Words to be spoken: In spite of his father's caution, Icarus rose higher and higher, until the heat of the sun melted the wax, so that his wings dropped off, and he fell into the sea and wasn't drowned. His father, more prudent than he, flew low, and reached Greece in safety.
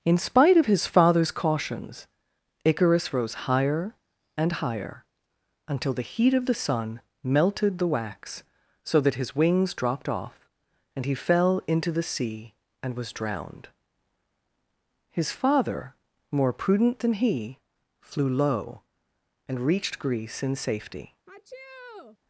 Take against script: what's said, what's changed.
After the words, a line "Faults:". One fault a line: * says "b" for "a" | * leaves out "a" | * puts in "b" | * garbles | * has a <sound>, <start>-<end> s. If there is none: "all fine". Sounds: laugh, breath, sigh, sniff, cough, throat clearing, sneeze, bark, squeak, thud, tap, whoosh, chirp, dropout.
In spite of his father's cautions, Icarus rose higher and higher, until the heat of the sun melted the wax, so that his wings dropped off, and he fell into the sea and was drowned. His father, more prudent than he, flew low, and reached Greece in safety.
Faults:
* says "cautions" for "caution"
* says "was" for "wasn't"
* has a sneeze, 21.3-22.2 s